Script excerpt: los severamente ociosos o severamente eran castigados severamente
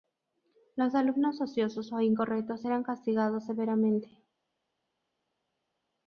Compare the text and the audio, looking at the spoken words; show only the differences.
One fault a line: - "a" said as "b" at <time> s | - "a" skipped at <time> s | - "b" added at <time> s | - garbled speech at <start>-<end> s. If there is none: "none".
- "severamente" said as "alumnos" at 0.9 s
- "severamente" said as "incorrectos" at 2.0 s